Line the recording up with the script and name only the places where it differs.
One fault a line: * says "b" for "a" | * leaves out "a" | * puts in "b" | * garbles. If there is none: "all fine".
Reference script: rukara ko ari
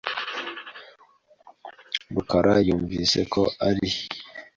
* puts in "yumvise"